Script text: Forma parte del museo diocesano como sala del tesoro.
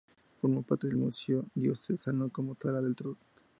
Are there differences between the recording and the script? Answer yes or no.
no